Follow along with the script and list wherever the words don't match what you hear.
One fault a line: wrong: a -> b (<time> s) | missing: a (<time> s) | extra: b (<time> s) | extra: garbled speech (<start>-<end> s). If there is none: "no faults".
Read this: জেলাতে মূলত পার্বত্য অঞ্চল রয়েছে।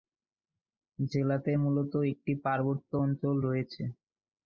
extra: একটি (2.1 s)